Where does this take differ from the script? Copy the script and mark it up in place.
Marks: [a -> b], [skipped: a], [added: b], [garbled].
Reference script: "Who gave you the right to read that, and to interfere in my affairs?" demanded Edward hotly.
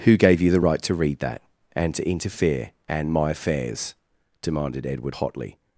"Who gave you the right to read that, and to interfere [in -> and] my affairs?" demanded Edward hotly.